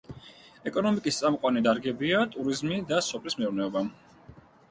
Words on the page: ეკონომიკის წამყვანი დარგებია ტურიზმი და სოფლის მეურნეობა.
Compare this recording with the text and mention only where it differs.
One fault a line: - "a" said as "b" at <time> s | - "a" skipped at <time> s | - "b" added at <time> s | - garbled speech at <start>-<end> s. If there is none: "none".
none